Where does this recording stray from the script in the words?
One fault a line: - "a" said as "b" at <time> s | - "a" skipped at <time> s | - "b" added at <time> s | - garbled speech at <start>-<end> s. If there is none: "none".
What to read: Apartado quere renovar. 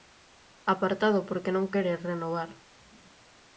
- "porque non" added at 1.3 s